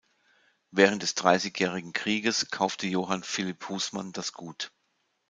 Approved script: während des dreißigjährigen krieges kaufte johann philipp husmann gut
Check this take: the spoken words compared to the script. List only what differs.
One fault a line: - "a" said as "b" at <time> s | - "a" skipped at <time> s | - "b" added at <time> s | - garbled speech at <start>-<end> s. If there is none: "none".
- "das" added at 4.1 s